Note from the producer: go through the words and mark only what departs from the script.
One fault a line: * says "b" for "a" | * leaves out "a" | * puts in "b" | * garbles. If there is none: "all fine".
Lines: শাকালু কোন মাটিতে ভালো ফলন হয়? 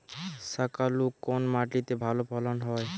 all fine